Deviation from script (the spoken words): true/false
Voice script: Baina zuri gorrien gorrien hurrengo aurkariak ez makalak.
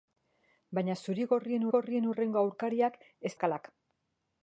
false